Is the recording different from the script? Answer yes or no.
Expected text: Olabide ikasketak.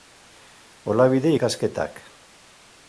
no